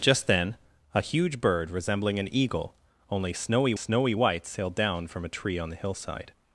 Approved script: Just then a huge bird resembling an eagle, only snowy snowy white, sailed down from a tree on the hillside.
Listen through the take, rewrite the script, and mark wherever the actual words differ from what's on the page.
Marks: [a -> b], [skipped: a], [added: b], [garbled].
Just then a huge bird resembling an eagle, only snowy snowy white, sailed down from a tree on the hillside.